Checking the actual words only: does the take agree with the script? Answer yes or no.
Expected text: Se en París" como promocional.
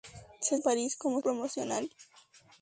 yes